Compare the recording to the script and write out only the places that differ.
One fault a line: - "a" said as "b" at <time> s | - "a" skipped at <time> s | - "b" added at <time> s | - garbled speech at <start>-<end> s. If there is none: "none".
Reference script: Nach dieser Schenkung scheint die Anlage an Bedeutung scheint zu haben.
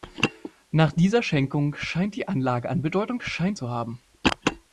none